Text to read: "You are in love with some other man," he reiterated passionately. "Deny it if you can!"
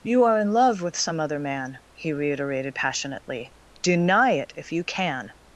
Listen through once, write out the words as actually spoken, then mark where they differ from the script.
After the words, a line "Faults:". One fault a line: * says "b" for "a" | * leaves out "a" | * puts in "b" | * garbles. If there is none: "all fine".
"You are in love with some other man," he reiterated passionately. "Deny it if you can!"
Faults:
all fine